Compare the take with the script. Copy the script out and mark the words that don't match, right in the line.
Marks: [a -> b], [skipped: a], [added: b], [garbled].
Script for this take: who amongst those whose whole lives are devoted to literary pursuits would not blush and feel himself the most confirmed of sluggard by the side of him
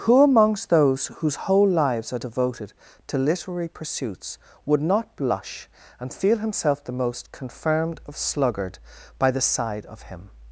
who amongst those whose whole lives are devoted to literary pursuits would not blush and feel himself the most confirmed of sluggard by the side of him